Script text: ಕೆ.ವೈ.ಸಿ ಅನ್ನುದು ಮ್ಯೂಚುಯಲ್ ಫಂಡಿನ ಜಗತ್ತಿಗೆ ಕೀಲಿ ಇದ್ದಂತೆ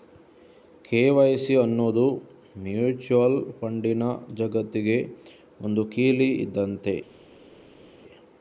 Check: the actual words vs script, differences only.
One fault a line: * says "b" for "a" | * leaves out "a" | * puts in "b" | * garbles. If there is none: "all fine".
* puts in "ಒಂದು"